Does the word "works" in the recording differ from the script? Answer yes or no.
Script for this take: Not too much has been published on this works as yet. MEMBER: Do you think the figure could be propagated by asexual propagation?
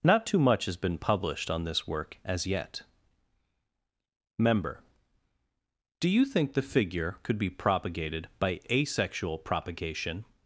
yes